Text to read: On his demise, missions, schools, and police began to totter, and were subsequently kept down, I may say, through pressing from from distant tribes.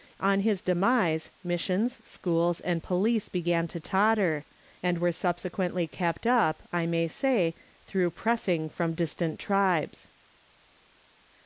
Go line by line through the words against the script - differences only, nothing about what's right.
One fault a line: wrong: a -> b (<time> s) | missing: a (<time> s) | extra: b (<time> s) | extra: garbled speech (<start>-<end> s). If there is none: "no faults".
wrong: down -> up (6.3 s)
missing: from (8.9 s)